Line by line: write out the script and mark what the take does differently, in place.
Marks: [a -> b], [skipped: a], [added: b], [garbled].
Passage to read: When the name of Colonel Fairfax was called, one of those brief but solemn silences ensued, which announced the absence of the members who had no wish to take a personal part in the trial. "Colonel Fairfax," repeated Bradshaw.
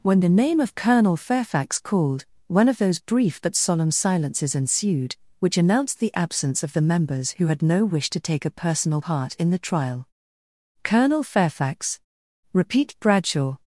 When the name of Colonel Fairfax [skipped: was] called, one of those brief but solemn silences ensued, which announced the absence of the members who had no wish to take a personal part in the trial. "Colonel Fairfax," [repeated -> repeat] Bradshaw.